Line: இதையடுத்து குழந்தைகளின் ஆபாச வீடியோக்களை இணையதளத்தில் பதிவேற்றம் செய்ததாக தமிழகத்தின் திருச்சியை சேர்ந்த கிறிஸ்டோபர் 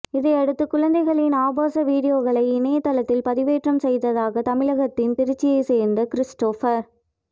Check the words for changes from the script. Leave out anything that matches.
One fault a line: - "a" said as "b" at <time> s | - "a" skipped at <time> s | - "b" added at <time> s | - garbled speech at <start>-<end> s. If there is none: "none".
none